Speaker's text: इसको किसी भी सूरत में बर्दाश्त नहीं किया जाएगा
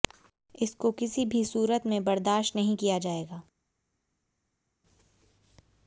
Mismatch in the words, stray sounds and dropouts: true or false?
false